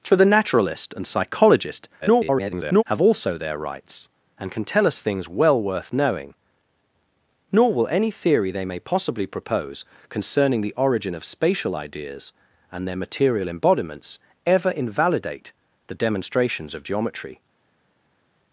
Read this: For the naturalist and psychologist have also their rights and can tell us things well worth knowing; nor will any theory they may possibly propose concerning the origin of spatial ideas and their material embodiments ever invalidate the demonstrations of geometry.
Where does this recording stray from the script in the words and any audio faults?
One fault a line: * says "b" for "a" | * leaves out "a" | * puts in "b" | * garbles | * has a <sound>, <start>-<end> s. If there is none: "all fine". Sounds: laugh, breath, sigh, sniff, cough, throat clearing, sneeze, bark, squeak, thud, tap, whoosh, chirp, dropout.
* garbles